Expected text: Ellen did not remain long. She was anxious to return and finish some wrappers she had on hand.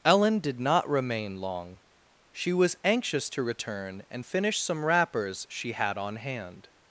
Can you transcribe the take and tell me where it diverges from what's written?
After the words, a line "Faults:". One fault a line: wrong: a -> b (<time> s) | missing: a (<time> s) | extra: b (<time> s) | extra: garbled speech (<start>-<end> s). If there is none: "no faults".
Ellen did not remain long. She was anxious to return and finish some wrappers she had on hand.
Faults:
no faults